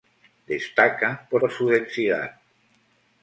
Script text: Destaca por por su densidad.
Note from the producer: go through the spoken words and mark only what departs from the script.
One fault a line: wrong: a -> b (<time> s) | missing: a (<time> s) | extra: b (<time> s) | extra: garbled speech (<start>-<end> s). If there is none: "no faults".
no faults